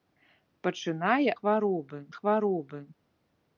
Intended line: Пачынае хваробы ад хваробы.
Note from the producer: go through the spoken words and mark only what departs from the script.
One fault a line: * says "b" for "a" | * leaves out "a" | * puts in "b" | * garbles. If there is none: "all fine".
all fine